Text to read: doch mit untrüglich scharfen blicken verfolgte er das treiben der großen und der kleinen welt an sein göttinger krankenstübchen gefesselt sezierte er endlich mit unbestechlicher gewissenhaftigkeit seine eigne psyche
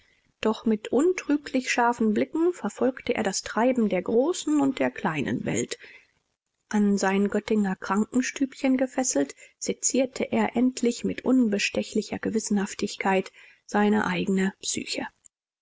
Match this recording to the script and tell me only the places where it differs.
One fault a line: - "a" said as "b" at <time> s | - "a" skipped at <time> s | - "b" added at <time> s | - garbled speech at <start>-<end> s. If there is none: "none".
none